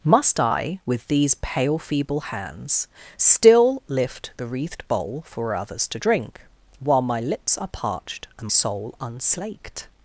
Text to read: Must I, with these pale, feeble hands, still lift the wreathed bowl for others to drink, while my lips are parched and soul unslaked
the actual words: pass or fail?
pass